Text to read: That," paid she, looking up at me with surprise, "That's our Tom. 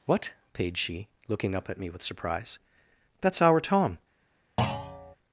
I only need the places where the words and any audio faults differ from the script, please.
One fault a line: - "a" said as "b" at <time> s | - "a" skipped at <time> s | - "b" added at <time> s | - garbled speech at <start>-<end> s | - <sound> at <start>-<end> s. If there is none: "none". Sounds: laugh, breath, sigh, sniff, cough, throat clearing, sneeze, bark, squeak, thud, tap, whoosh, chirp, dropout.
- "That" said as "What" at 0.1 s
- thud at 4.6-5.2 s